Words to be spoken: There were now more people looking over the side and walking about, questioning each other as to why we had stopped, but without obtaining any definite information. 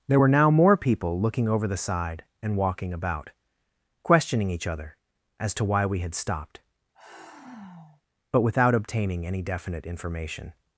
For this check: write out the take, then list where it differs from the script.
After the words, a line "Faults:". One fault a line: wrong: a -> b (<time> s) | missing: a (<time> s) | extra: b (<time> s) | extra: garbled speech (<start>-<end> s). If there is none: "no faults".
There were now more people looking over the side and walking about, questioning each other as to why we had stopped, but without obtaining any definite information.
Faults:
no faults